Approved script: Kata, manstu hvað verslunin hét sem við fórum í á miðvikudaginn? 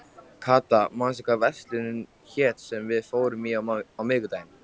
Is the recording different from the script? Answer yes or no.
no